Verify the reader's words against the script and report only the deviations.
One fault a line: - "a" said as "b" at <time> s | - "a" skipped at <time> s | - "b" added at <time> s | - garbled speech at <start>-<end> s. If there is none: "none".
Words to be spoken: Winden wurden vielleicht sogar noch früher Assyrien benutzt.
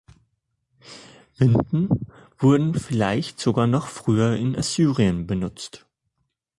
- "in" added at 4.3 s